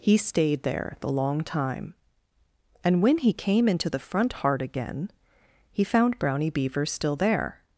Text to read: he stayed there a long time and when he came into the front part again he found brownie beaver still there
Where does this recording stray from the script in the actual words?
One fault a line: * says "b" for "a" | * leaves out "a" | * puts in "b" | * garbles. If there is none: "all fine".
* says "the" for "a"
* says "heart" for "part"